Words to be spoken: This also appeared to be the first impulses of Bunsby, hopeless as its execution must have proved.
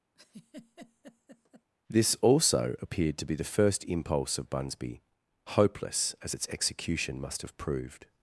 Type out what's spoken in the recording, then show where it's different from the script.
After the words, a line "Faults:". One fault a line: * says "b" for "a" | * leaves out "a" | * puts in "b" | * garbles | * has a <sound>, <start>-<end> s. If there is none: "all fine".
This also appeared to be the first impulse of Bunsby, hopeless as its execution must have proved.
Faults:
* has a laugh, 0.2-1.7 s
* says "impulse" for "impulses"